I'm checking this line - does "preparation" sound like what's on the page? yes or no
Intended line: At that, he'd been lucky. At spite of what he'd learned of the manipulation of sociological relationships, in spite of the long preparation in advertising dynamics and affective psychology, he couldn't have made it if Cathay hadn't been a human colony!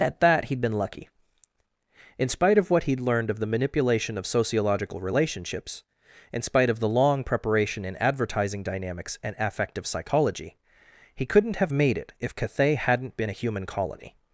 yes